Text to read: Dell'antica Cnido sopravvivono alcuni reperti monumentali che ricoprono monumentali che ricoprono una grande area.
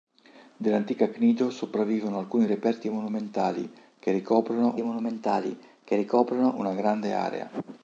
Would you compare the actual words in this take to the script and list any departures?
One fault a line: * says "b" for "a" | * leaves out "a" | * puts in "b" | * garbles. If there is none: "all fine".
all fine